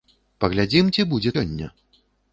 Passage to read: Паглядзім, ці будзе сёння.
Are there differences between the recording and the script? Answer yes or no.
no